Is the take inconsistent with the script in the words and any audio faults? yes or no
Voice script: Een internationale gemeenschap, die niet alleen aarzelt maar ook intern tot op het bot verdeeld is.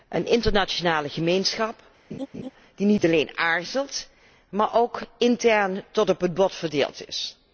yes